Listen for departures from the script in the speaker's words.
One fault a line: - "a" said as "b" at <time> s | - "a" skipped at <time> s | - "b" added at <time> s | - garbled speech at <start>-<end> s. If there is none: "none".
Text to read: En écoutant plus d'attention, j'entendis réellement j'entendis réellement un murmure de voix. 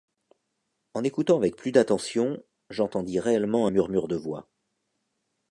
- "avec" added at 1.4 s
- "j'entendis réellement" skipped at 3.7 s